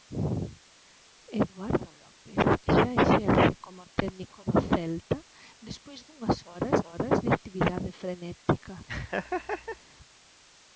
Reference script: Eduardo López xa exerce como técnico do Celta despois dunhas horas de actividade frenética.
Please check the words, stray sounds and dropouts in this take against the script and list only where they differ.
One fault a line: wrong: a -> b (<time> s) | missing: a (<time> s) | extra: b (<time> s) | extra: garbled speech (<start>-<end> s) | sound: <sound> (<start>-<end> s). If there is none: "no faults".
extra: horas (6.9 s)
sound: laugh (8.9-9.8 s)